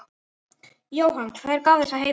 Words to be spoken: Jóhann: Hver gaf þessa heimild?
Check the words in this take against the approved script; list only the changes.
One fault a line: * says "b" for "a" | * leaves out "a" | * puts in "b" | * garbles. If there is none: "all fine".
all fine